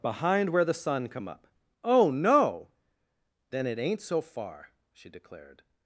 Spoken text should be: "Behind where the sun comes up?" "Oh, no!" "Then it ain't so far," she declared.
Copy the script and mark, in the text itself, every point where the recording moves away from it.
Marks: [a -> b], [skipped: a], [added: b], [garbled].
"Behind where the sun [comes -> come] up?" "Oh, no!" "Then it ain't so far," she declared.